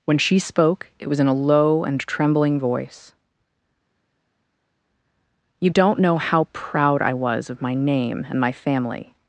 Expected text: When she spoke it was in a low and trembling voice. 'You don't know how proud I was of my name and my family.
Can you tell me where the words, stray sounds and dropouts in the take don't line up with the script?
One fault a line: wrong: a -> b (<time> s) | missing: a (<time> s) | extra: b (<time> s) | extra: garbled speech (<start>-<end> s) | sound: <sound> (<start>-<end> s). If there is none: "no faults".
no faults